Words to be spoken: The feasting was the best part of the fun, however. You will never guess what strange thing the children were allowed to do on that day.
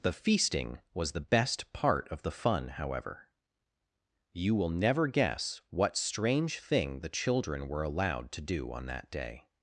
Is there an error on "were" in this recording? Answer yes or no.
no